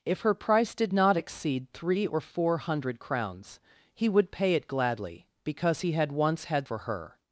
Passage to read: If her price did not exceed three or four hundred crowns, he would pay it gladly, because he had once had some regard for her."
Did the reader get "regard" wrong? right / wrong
wrong